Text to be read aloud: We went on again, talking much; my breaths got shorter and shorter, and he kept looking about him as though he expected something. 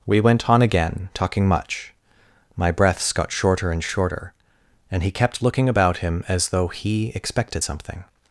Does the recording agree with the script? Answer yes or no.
yes